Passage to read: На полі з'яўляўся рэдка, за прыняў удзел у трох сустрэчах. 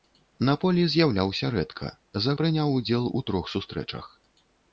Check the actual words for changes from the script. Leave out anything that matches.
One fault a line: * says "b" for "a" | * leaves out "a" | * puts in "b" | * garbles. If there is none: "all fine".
all fine